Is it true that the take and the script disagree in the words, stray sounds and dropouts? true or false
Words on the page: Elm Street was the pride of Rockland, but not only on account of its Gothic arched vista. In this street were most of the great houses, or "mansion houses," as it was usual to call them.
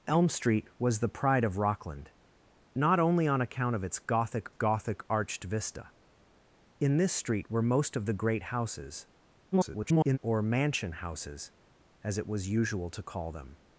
true